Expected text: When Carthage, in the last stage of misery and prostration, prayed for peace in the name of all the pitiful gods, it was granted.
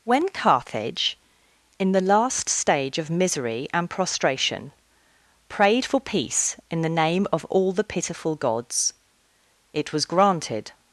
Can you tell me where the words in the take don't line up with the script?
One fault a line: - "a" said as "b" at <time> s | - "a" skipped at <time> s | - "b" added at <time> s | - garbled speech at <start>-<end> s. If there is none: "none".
none